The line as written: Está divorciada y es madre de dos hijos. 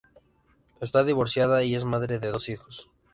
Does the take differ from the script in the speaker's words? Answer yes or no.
no